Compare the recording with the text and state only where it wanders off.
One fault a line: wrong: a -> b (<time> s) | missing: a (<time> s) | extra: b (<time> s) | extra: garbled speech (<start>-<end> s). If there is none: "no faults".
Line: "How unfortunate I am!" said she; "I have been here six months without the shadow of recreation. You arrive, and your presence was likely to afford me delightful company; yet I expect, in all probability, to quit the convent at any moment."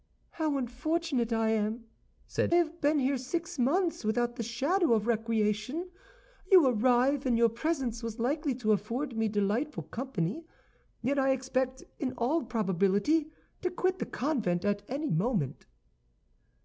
missing: she I (2.5 s)